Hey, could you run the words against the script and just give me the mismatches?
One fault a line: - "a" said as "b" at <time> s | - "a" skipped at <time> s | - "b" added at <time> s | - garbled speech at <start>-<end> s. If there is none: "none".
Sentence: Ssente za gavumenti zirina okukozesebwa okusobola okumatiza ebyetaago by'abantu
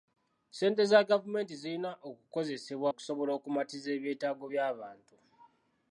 none